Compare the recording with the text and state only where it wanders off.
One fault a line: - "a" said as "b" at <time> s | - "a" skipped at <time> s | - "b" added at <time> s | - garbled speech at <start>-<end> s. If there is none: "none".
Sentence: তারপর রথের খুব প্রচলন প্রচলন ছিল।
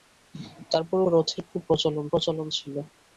none